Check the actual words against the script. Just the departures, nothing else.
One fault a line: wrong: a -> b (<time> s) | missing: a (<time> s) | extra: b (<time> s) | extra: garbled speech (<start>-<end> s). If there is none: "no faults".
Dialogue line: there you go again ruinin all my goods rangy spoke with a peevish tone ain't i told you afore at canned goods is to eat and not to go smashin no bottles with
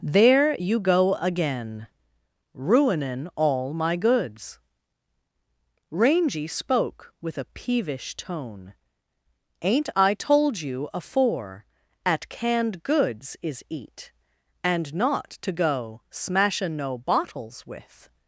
missing: to (13.6 s)